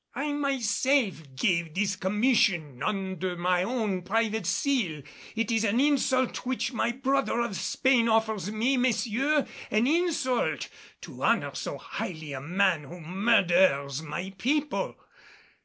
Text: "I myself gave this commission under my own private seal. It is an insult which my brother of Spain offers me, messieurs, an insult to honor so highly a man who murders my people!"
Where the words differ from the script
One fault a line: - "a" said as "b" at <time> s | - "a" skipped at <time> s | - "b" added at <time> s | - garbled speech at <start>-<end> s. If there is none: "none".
none